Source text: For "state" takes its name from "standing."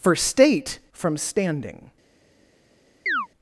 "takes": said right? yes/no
no